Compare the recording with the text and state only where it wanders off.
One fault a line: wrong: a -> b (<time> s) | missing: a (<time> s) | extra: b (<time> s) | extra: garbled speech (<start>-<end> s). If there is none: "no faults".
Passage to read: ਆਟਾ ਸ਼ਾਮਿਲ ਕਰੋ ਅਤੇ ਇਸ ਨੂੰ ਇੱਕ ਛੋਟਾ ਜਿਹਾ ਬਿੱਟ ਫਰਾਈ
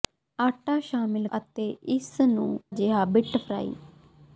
missing: ਕਰੋ (1.3 s)
missing: ਇੱਕ ਛੋਟਾ (2.5 s)